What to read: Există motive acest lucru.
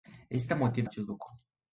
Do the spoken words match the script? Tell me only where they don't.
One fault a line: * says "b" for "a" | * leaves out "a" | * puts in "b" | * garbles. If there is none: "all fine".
all fine